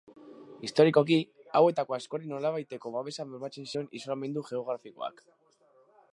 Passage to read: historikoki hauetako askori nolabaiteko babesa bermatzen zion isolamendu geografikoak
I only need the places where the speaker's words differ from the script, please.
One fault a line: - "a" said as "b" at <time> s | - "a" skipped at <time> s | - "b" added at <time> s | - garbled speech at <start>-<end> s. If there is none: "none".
none